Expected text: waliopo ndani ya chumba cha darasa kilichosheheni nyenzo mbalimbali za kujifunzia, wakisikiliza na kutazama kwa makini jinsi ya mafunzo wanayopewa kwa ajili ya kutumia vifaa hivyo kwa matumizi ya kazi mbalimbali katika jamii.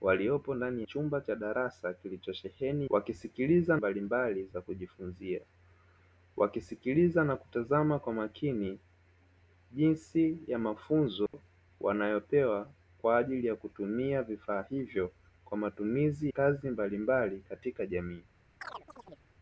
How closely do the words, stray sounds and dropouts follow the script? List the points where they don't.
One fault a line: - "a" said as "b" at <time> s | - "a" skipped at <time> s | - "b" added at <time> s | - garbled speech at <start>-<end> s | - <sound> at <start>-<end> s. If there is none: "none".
- "ya" skipped at 0.8 s
- "nyenzo" said as "wakisikiliza" at 2.9 s
- dropout at 11.3-11.3 s
- "ya" skipped at 16.3 s
- chirp at 18.6-19.3 s